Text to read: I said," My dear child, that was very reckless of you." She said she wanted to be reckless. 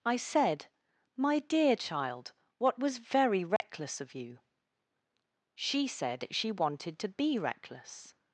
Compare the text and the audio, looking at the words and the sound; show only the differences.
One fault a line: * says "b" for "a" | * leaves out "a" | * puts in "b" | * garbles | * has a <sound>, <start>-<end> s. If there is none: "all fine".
* says "what" for "that"
* has a dropout, 3.6-3.6 s